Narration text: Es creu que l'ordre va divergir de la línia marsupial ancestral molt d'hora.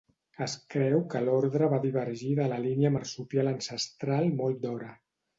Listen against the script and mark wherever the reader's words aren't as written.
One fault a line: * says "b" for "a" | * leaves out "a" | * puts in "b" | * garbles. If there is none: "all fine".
all fine